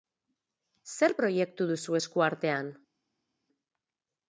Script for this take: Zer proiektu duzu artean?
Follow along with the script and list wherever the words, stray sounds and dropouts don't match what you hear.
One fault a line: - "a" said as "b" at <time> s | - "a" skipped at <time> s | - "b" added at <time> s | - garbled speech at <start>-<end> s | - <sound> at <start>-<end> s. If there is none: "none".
- "esku" added at 2.0 s